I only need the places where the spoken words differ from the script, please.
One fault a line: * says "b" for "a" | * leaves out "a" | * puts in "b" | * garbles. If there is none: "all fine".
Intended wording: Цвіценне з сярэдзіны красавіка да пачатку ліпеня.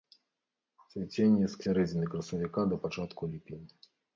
all fine